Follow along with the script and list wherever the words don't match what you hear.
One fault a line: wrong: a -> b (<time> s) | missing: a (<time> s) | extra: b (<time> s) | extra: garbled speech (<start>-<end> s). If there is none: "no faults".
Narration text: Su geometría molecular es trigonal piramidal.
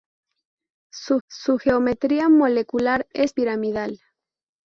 extra: su (1.3 s)
missing: trigonal (3.3 s)